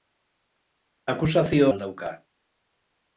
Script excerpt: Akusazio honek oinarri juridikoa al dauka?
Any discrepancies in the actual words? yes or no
yes